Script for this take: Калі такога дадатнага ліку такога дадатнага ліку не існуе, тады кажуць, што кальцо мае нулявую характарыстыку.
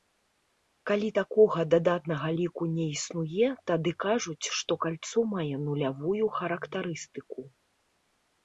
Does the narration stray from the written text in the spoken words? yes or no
yes